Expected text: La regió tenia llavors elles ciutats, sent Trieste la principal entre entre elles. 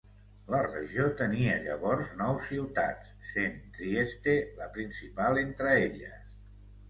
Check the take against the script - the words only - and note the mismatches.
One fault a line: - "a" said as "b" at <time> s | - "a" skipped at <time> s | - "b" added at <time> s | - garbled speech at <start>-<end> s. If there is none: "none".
- "elles" said as "nou" at 2.2 s
- "entre" skipped at 5.7 s